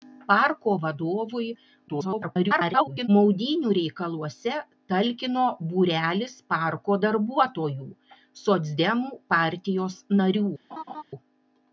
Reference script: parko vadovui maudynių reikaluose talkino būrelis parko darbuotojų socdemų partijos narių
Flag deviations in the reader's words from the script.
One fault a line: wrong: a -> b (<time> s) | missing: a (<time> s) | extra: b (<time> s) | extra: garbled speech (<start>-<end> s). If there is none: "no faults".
extra: garbled speech (1.9-3.1 s)